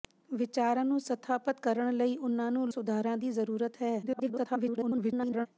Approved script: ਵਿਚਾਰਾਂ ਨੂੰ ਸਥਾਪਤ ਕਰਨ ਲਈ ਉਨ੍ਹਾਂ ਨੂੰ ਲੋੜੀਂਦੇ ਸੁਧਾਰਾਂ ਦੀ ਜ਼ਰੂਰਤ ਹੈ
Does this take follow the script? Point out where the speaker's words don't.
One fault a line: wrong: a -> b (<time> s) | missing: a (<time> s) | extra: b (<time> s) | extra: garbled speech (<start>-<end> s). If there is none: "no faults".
missing: ਲੋੜੀਂਦੇ (2.7 s)
extra: garbled speech (4.0-5.5 s)